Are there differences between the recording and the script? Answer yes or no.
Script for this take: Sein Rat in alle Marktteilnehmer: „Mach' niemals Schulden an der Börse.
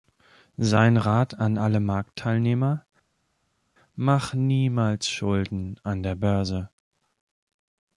yes